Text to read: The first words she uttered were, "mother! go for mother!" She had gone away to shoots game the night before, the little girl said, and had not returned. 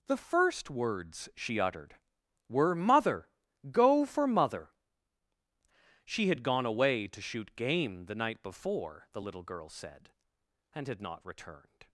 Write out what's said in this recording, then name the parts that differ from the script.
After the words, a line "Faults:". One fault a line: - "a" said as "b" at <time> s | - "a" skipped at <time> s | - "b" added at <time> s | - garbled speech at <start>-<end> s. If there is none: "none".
The first words she uttered were, "mother! go for mother!" She had gone away to shoot game the night before, the little girl said, and had not returned.
Faults:
- "shoots" said as "shoot" at 7.2 s